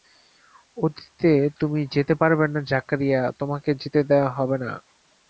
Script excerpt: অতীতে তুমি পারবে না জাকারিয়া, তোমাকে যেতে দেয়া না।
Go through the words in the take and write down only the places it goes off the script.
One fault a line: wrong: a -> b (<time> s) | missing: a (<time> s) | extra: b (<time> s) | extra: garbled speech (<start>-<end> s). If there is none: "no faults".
extra: যেতে (1.9 s)
extra: হবে (4.4 s)